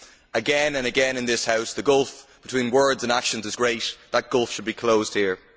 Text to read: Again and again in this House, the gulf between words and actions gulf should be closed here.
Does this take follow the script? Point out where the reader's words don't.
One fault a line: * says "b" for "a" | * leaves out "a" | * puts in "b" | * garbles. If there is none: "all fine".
* puts in "is great That"